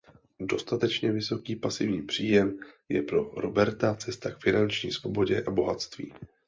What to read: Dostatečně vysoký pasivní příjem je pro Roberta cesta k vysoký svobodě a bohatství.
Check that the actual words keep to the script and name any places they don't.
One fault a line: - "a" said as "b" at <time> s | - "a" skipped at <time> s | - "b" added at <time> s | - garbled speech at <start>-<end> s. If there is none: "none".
- "vysoký" said as "finanční" at 4.4 s